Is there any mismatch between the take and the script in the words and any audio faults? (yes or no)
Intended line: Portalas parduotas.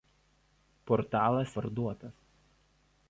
no